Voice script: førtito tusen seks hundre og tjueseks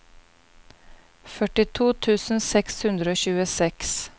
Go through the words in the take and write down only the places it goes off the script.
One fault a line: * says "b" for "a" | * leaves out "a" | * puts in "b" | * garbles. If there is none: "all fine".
all fine